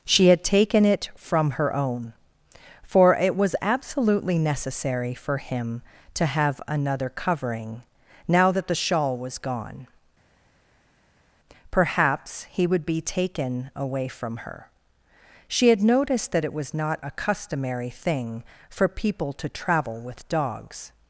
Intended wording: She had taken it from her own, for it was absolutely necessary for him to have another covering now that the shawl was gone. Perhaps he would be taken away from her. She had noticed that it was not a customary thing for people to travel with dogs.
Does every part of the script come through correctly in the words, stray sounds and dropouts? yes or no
yes